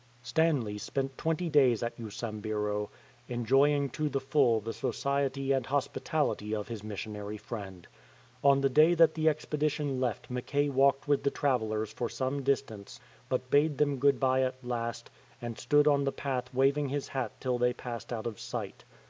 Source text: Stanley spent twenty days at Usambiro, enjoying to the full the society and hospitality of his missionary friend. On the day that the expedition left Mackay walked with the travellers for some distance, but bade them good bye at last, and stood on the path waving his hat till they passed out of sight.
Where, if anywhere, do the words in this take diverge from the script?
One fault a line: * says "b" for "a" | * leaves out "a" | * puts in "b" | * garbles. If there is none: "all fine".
all fine